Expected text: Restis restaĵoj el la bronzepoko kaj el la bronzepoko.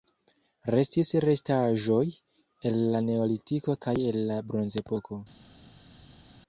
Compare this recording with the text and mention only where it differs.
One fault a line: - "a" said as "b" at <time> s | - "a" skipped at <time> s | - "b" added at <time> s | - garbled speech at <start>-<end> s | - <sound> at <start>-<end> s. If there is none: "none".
- "bronzepoko" said as "neolitiko" at 3.1 s